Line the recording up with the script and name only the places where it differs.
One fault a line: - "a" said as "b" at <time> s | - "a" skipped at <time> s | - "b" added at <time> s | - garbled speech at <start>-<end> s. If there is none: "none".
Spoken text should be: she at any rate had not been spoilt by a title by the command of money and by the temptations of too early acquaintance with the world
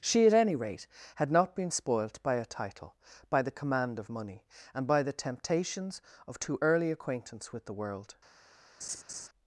none